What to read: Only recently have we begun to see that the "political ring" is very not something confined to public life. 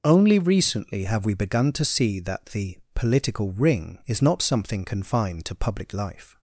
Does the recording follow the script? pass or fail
fail